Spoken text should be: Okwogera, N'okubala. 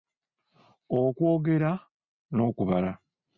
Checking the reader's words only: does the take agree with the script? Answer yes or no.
yes